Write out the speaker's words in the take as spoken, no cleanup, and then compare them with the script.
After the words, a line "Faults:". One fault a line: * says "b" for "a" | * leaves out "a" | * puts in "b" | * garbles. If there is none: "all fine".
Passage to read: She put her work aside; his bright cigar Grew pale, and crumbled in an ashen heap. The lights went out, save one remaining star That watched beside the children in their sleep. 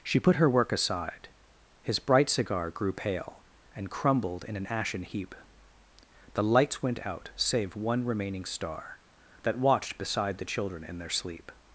She put her work aside; his bright cigar Grew pale, and crumbled in an ashen heap. The lights went out, save one remaining star That watched beside the children in their sleep.
Faults:
all fine